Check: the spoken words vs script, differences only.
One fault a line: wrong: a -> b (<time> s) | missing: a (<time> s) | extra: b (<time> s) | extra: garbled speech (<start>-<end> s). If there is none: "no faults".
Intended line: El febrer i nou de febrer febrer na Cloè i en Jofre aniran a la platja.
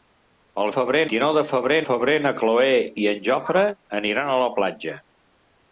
no faults